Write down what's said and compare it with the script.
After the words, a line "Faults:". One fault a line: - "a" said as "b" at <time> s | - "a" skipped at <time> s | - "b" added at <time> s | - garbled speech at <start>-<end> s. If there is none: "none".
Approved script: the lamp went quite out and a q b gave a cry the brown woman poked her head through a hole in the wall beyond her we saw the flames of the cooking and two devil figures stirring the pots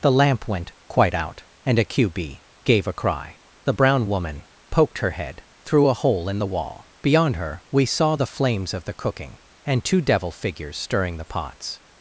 the lamp went quite out and a q b gave a cry the brown woman poked her head through a hole in the wall beyond her we saw the flames of the cooking and two devil figures stirring the pots
Faults:
none